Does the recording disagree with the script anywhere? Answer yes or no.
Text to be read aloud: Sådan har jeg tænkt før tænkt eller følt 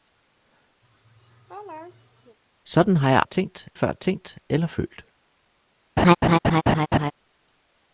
no